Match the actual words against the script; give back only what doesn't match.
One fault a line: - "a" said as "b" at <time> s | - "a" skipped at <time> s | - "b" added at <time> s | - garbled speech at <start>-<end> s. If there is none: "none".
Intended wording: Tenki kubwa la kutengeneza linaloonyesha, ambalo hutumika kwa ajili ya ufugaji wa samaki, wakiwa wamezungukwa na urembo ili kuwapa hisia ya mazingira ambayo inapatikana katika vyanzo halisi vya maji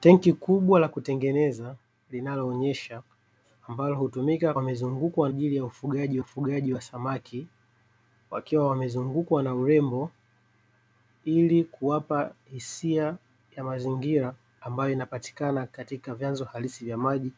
- "kwa" said as "wamezungukwa" at 4.5 s
- "ufugaji" added at 6.2 s